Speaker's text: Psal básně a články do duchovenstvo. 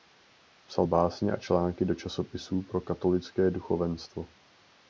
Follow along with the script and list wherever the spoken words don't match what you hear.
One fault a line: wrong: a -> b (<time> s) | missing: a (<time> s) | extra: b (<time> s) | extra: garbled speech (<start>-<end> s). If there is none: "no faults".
extra: časopisů pro katolické (1.9 s)